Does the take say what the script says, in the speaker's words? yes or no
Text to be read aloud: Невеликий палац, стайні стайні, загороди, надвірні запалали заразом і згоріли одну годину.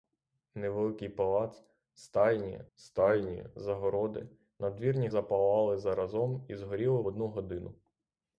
yes